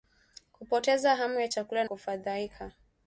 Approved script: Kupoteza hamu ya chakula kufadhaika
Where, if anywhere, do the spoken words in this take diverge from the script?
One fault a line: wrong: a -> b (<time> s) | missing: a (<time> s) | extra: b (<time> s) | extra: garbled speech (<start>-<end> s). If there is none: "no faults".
no faults